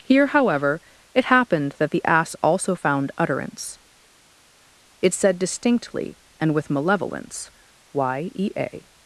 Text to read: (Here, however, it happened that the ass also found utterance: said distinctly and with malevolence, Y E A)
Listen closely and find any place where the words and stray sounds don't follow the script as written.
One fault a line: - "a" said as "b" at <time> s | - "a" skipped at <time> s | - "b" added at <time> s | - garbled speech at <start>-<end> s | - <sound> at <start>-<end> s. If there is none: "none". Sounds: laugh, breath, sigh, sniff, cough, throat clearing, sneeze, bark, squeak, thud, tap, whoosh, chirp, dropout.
- "it" added at 5.0 s